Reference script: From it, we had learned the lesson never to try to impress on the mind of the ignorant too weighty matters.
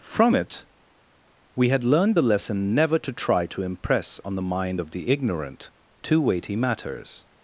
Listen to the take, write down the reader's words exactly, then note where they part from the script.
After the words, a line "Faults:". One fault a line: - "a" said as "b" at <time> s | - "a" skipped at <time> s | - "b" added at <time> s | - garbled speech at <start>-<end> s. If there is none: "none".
From it, we had learned the lesson never to try to impress on the mind of the ignorant too weighty matters.
Faults:
none